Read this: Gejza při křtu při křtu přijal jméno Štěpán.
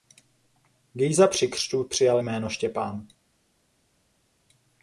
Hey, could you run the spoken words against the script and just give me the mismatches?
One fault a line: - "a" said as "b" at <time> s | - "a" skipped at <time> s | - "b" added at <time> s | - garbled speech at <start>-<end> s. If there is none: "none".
- "při křtu" skipped at 1.8 s